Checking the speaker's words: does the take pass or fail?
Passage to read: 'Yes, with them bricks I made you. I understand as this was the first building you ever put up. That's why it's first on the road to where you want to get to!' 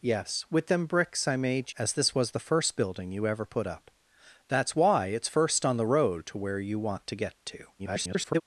fail